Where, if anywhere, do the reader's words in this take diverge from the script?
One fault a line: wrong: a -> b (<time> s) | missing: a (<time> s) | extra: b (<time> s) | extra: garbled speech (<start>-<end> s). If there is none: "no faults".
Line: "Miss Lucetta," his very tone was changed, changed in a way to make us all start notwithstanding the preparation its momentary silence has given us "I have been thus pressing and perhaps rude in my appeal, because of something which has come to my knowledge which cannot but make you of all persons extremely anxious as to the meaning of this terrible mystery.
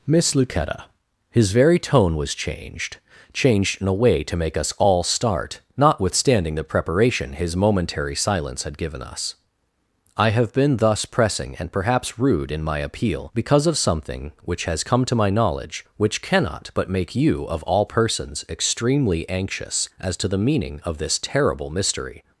wrong: its -> his (7.3 s)
wrong: has -> had (8.6 s)